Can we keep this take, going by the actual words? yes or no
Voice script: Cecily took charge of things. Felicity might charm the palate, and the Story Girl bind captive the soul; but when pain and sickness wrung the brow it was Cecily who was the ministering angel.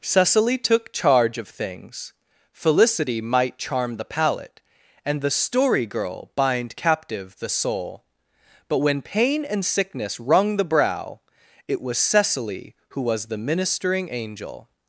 yes